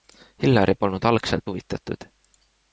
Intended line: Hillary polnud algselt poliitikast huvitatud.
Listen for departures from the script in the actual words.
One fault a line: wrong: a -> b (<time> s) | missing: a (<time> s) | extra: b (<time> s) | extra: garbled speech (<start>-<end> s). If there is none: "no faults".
missing: poliitikast (1.4 s)